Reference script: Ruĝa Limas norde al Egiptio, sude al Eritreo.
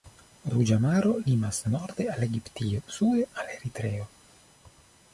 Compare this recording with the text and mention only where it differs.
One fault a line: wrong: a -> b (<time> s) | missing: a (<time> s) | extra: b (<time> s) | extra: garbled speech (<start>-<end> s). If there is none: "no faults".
extra: Maro (0.8 s)